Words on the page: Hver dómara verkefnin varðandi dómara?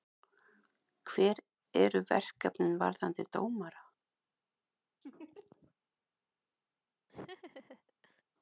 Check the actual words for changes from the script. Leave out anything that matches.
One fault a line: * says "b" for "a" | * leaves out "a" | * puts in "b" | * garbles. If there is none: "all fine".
* says "eru" for "dómara"